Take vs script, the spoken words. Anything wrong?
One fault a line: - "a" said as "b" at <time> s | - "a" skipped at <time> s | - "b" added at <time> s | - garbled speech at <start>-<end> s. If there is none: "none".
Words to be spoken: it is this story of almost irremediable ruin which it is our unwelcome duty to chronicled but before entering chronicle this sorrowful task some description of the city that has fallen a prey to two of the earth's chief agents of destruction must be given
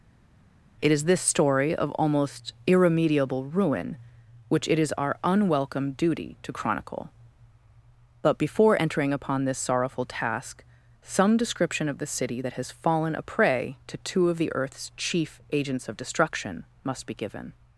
- "chronicled" said as "chronicle" at 6.5 s
- "chronicle" said as "upon" at 9.1 s